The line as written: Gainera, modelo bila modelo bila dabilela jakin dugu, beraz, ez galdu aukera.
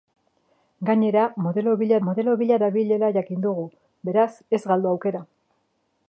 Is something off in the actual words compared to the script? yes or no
no